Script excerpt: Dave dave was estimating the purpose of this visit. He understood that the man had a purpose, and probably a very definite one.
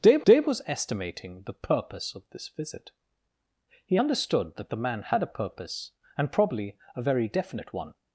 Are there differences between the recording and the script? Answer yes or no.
no